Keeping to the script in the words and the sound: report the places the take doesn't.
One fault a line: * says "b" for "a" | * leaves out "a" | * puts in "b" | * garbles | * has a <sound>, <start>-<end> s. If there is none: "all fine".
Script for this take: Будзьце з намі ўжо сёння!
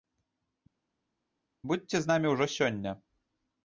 all fine